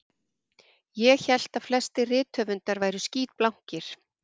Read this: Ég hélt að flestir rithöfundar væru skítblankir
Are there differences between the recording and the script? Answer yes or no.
no